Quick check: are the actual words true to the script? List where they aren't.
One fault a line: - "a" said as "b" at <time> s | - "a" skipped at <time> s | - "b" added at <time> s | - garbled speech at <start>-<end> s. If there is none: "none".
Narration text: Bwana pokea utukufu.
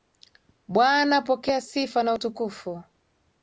- "sifa na" added at 1.6 s